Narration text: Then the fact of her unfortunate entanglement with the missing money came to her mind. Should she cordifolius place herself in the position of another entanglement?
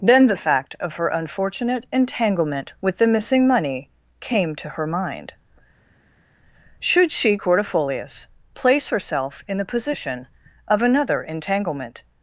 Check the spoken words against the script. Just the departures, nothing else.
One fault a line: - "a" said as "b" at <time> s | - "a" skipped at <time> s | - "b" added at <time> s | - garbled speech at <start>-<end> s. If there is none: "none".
none